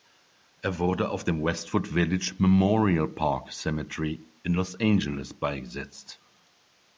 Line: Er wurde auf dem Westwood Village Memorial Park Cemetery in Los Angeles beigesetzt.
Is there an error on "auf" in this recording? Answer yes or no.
no